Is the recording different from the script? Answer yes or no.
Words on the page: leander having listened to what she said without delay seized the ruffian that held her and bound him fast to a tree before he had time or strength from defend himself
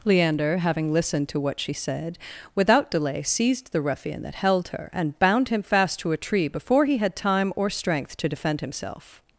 yes